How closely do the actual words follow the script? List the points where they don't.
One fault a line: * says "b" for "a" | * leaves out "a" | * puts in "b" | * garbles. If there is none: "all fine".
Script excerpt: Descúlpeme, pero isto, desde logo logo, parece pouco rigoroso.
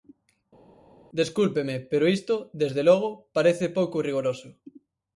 * leaves out "logo"